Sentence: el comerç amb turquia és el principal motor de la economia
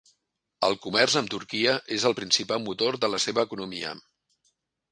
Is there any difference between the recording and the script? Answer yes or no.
yes